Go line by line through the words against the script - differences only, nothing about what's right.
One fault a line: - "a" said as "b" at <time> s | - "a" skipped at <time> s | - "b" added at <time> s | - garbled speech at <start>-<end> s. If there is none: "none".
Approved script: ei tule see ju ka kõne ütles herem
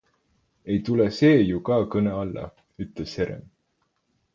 - "alla" added at 2.2 s